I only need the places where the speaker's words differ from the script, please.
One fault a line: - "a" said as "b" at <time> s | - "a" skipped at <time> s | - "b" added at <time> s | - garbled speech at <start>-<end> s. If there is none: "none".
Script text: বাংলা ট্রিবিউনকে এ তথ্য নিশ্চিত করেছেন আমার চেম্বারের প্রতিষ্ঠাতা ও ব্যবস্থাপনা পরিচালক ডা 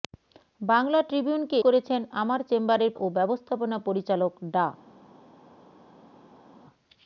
- "এ তথ্য নিশ্চিত" skipped at 1.6 s
- "প্রতিষ্ঠাতা" skipped at 2.9 s